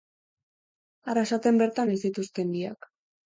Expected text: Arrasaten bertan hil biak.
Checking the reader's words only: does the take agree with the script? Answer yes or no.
no